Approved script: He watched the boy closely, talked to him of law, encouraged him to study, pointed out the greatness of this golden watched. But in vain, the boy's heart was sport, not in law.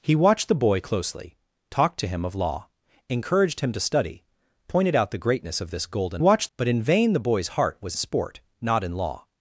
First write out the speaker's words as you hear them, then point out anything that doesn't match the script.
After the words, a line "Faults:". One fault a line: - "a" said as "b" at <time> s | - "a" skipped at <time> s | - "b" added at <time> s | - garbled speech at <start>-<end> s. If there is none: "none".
He watched the boy closely, talked to him of law, encouraged him to study, pointed out the greatness of this golden watched. But in vain, the boy's heart was sport, not in law.
Faults:
none